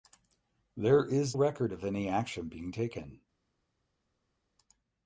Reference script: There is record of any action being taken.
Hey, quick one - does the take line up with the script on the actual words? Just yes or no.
yes